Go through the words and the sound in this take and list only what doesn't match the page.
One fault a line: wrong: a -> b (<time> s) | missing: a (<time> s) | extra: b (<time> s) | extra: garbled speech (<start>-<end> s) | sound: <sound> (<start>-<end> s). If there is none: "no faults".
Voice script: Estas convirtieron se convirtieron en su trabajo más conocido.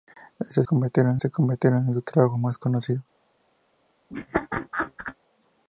sound: laugh (4.1-5.2 s)